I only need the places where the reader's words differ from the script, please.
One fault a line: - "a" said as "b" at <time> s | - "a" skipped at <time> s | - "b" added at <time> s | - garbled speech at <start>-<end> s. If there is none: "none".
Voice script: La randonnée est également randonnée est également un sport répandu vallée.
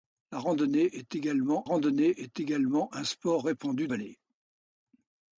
none